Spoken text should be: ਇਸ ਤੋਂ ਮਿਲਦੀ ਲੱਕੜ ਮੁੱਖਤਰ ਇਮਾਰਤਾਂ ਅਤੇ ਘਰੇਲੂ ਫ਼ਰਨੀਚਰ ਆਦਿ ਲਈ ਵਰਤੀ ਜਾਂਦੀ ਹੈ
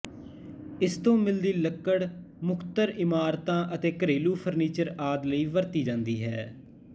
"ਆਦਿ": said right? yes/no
yes